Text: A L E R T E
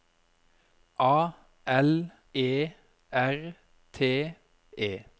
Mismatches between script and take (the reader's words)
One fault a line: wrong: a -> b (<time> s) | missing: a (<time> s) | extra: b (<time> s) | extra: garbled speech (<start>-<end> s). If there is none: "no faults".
no faults